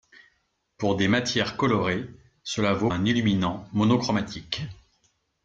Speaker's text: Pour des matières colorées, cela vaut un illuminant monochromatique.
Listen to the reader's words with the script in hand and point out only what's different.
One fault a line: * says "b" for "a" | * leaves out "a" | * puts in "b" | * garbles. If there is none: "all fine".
all fine